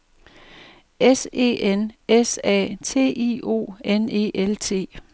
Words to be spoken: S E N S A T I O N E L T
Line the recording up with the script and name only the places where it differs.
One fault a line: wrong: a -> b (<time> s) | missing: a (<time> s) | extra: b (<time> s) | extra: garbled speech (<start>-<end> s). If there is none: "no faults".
no faults